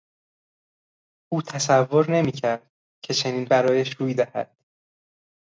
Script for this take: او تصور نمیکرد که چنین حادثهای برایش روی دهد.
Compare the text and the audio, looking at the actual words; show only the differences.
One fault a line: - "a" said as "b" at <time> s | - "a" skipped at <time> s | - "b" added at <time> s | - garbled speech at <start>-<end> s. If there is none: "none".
- "حادثهای" skipped at 3.5 s